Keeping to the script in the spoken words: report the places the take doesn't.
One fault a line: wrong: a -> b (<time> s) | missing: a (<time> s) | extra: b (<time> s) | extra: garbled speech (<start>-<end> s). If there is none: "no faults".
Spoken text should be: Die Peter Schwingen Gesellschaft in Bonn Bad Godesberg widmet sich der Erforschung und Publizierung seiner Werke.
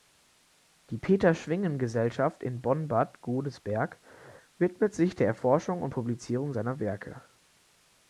no faults